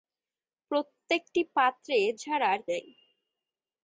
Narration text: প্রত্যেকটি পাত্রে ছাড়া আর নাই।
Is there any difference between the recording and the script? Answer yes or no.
no